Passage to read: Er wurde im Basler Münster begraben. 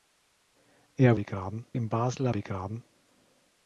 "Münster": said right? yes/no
no